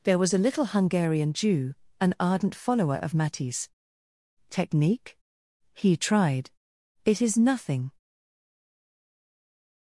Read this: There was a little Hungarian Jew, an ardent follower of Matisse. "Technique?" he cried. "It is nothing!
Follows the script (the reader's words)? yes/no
no